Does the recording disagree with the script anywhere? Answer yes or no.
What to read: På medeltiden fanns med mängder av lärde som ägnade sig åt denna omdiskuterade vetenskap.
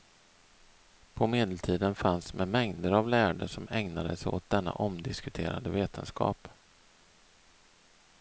no